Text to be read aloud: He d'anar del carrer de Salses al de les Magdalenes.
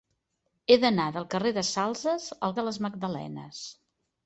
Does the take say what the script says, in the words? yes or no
yes